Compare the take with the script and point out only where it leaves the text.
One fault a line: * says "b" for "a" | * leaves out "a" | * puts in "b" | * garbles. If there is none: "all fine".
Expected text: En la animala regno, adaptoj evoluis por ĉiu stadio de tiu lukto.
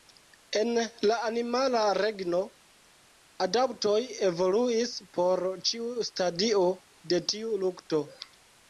all fine